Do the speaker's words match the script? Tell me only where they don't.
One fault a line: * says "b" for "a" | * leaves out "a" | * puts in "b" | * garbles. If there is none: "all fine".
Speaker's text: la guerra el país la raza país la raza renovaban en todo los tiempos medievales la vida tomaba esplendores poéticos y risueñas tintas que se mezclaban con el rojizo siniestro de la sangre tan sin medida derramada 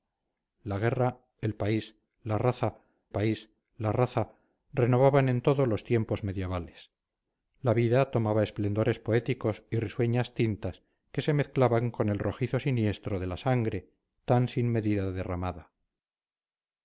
all fine